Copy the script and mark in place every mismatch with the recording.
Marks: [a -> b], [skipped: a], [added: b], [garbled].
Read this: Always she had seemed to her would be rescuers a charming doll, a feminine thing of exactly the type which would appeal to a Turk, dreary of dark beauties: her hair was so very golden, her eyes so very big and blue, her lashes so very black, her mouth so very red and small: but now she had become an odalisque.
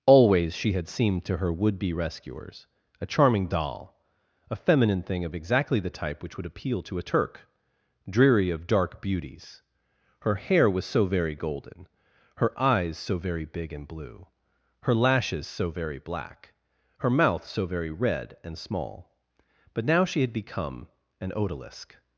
Always she had seemed to her would be rescuers a charming doll, a feminine thing of exactly the type which would appeal to a Turk, dreary of dark beauties: her hair was so very golden, her eyes so very big and blue, her lashes so very black, her mouth so very red and small: but now she had become an odalisque.